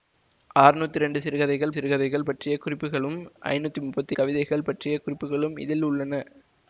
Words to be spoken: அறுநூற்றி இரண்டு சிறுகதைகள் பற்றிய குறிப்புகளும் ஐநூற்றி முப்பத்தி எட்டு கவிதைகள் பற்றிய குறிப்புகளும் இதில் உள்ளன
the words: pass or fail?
fail